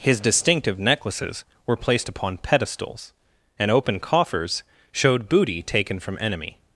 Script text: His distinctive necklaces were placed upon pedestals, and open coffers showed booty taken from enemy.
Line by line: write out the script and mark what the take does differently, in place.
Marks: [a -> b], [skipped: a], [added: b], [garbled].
His distinctive necklaces were placed upon pedestals, and open coffers showed booty taken from enemy.